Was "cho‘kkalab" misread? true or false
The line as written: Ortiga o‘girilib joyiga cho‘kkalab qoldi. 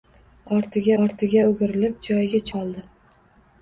true